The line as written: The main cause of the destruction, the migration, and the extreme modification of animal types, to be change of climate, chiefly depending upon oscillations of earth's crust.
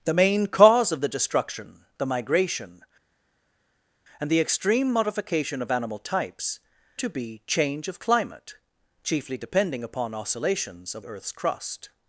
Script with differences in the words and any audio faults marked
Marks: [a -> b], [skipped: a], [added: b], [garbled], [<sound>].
The main cause of the destruction, the migration, and the extreme modification of animal types, to be change of climate, chiefly depending upon oscillations of earth's crust.